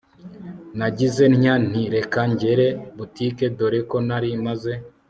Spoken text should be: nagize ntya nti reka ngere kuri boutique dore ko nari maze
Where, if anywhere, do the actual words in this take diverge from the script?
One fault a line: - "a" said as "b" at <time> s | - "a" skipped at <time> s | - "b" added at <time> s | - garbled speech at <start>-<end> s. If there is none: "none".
- "kuri" skipped at 2.7 s